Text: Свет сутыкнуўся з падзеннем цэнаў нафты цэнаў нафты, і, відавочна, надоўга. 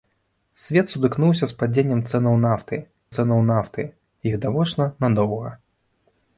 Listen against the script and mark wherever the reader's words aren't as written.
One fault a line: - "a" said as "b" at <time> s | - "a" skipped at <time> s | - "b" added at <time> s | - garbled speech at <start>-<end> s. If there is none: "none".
none